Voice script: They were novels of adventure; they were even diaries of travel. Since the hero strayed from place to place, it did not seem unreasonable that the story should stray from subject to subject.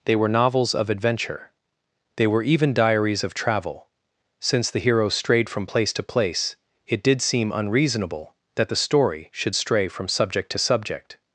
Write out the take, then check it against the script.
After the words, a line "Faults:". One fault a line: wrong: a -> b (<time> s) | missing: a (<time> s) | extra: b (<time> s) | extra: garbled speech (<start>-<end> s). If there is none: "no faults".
They were novels of adventure; they were even diaries of travel. Since the hero strayed from place to place, it did seem unreasonable that the story should stray from subject to subject.
Faults:
missing: not (7.2 s)